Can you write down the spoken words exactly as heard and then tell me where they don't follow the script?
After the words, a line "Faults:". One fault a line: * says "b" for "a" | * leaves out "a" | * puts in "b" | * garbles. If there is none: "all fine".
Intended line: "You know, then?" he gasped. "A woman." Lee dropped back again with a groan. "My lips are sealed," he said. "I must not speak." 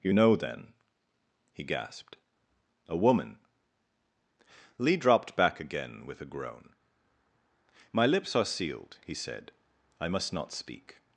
"You know, then?" he gasped. "A woman." Lee dropped back again with a groan. "My lips are sealed," he said. "I must not speak."
Faults:
all fine